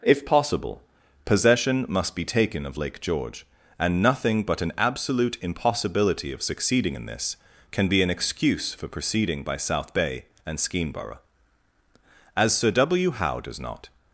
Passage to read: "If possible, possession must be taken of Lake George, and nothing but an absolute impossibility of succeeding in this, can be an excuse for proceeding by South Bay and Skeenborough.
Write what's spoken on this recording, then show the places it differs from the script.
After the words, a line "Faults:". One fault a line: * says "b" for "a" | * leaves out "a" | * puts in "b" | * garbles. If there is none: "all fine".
"If possible, possession must be taken of Lake George, and nothing but an absolute impossibility of succeeding in this, can be an excuse for proceeding by South Bay and Skeenborough. "As Sir W. Howe does not
Faults:
* puts in "As Sir W Howe does not"